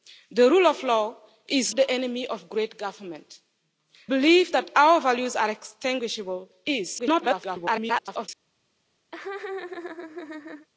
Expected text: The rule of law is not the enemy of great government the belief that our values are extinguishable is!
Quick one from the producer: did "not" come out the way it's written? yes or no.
no